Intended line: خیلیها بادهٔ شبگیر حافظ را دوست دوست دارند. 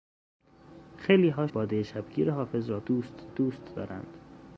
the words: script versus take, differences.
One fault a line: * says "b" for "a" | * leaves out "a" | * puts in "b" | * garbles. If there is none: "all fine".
all fine